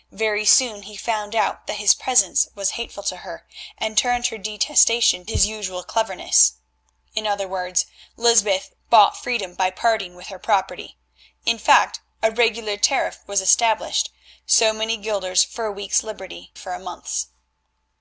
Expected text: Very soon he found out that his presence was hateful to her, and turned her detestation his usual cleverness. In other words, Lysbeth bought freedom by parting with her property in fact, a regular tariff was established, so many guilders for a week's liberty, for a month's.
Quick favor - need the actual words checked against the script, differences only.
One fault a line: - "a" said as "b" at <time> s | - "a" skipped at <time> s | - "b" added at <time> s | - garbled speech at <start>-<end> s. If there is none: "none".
none